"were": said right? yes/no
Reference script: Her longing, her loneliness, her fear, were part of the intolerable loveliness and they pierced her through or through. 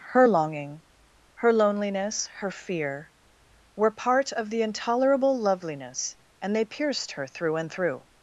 yes